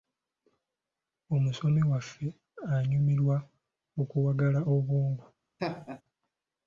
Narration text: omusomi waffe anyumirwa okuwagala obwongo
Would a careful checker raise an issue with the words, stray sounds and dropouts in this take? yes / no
yes